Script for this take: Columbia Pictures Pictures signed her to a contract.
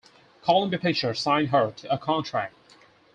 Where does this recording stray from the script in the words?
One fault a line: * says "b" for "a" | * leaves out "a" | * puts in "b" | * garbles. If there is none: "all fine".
* leaves out "Pictures"